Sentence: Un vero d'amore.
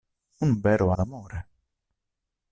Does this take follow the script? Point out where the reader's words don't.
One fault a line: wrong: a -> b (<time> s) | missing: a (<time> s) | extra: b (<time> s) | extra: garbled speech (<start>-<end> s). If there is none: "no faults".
no faults